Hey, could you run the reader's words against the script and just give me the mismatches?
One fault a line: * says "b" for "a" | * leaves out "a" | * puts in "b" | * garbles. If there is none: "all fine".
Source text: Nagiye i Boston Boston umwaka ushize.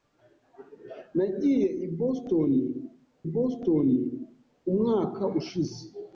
all fine